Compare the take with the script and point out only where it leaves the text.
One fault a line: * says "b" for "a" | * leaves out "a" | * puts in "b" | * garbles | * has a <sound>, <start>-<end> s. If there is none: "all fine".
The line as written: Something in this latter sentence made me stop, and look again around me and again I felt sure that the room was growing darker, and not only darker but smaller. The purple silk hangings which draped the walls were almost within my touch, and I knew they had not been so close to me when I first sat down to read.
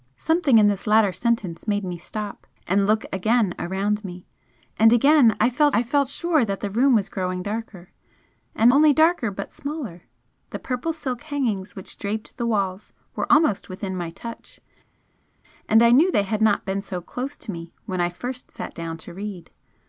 * puts in "I felt"
* leaves out "not"